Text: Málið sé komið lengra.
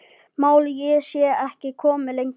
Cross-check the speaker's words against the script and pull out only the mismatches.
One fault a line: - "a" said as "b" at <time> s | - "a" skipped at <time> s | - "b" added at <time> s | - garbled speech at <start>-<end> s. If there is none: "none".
- "ekki" added at 1.5 s